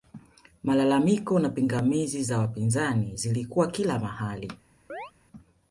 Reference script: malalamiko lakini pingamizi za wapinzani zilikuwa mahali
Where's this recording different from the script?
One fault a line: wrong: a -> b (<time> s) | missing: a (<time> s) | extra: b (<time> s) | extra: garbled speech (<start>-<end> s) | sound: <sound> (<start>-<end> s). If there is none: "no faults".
wrong: lakini -> na (1.4 s)
extra: kila (3.7 s)
sound: chirp (4.9-5.1 s)